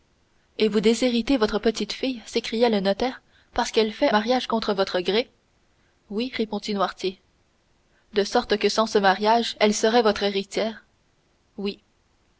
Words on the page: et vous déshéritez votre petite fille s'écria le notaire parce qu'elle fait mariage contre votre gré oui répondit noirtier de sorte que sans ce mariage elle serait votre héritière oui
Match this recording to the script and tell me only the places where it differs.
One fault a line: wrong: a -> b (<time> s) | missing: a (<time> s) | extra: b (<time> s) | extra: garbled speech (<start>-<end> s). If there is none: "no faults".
no faults